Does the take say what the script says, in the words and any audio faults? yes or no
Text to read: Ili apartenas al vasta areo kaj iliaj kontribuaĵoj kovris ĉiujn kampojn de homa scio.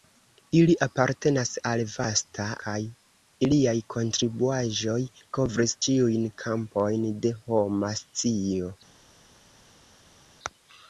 no